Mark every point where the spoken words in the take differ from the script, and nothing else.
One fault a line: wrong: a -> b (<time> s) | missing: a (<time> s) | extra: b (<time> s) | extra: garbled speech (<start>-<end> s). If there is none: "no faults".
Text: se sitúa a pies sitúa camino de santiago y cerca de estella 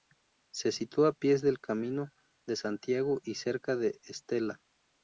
wrong: sitúa -> del (1.4 s)